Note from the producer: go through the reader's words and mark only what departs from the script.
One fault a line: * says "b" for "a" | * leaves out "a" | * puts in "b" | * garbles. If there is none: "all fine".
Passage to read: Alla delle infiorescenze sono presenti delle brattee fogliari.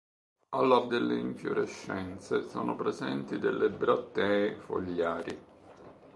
all fine